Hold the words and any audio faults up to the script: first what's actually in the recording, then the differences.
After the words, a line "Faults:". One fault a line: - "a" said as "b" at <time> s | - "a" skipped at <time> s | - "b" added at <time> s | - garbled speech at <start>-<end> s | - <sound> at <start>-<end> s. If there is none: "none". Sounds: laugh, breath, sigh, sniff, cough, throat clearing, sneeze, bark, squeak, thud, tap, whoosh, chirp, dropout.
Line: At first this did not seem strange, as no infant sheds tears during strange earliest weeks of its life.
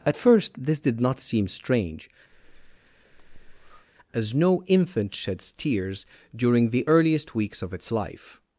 At first this did not seem strange, as no infant sheds tears during the earliest weeks of its life.
Faults:
- breath at 2.3-3.9 s
- "strange" said as "the" at 6.7 s